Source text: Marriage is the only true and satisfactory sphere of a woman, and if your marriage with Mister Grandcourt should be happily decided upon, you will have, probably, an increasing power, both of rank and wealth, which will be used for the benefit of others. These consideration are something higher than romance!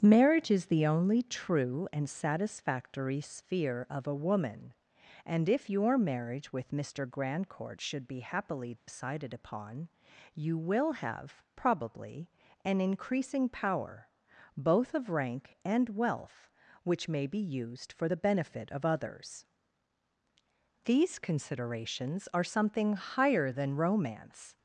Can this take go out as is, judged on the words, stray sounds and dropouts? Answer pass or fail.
fail